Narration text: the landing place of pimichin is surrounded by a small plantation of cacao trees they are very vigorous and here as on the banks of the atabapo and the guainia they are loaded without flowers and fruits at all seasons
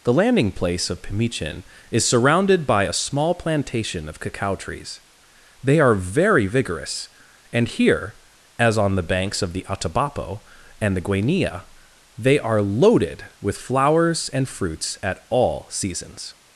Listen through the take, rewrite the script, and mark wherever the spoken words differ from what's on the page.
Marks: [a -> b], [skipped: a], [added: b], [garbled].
the landing place of pimichin is surrounded by a small plantation of cacao trees they are very vigorous and here as on the banks of the atabapo and the guainia they are loaded [without -> with] flowers and fruits at all seasons